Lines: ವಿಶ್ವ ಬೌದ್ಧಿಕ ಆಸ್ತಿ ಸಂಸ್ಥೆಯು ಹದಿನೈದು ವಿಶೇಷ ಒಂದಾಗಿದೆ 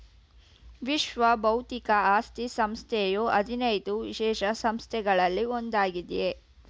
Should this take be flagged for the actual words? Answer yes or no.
yes